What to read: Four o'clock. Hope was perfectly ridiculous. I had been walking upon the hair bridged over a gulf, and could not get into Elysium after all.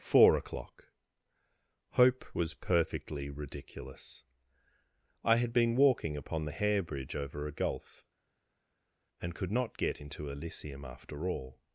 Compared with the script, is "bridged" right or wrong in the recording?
wrong